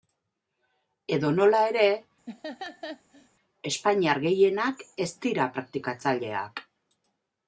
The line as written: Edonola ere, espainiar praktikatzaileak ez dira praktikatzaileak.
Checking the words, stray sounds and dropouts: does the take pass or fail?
fail